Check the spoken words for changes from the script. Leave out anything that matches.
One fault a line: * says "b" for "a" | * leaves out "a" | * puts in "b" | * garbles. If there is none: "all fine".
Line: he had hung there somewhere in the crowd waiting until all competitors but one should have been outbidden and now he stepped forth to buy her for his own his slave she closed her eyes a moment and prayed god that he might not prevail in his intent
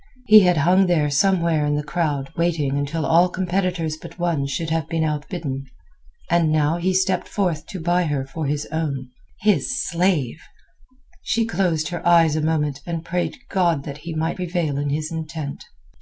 * leaves out "not"